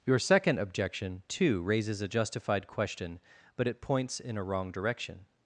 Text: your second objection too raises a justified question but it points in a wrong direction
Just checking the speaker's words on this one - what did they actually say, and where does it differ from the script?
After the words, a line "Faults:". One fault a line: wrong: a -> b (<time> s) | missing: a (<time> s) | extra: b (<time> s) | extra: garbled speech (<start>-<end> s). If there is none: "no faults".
your second objection too raises a justified question but it points in a wrong direction
Faults:
no faults